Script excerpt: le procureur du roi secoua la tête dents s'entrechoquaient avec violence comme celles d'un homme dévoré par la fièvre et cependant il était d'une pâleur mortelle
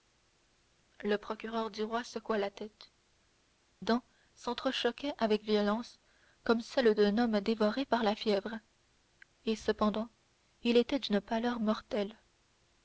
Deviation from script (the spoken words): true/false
false